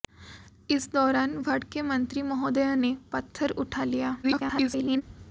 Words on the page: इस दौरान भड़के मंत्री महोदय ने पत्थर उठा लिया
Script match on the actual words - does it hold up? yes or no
no